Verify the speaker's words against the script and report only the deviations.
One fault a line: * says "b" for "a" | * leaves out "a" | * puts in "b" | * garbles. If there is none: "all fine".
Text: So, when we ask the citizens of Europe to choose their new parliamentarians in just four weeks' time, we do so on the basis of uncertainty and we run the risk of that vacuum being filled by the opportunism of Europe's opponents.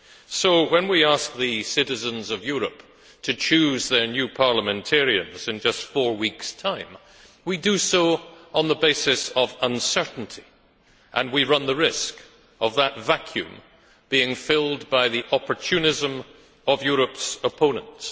all fine